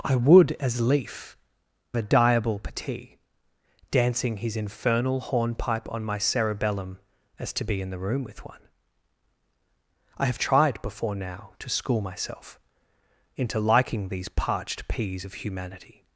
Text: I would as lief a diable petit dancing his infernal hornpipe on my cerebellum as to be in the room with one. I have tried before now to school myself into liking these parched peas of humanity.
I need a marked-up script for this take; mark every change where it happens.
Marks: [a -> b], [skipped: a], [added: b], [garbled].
I would as lief a diable petit dancing his infernal hornpipe on my cerebellum as to be in the room with one. I have tried before now to school myself into liking these parched peas of humanity.